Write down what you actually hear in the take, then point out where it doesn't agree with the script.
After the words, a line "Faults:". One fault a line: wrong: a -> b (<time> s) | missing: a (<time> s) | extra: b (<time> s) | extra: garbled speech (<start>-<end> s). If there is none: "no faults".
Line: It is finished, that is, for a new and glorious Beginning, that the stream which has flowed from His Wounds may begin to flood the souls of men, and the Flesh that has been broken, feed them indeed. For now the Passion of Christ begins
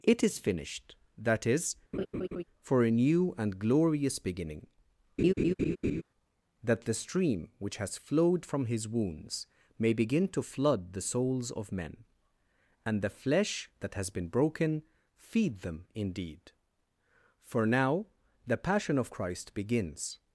It is finished, that is, for a new and glorious Beginning, that the stream which has flowed from His Wounds may begin to flood the souls of men, and the Flesh that has been broken, feed them indeed. For now the Passion of Christ begins
Faults:
no faults